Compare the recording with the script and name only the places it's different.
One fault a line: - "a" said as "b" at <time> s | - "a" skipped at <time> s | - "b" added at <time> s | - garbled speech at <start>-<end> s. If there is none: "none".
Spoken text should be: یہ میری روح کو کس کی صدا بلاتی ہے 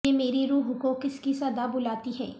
none